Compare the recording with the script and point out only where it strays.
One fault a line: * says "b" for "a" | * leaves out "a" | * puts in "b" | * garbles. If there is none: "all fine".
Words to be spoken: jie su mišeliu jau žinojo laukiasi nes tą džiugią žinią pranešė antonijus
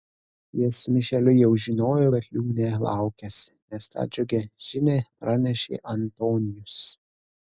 * puts in "kad liūnė"